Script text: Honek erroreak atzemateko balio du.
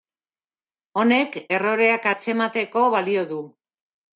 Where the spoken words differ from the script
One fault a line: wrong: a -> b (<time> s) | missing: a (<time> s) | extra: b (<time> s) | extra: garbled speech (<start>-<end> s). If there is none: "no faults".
no faults